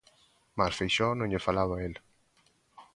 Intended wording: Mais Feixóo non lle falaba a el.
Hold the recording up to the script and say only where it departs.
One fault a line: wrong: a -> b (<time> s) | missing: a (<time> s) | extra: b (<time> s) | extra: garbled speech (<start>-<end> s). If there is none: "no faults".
no faults